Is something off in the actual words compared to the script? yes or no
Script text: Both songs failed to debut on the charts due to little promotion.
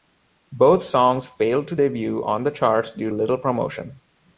yes